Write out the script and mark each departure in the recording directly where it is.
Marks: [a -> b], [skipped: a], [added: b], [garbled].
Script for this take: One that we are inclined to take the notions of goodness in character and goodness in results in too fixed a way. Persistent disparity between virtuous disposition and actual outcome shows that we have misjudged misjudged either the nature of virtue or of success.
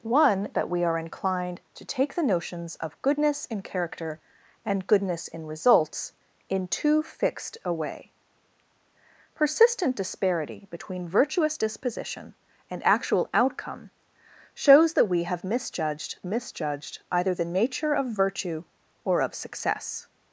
One that we are inclined to take the notions of goodness in character and goodness in results in too fixed a way. Persistent disparity between virtuous disposition and actual outcome shows that we have misjudged misjudged either the nature of virtue or of success.